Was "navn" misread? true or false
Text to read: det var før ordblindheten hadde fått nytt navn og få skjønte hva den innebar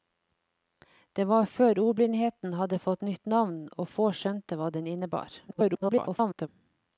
false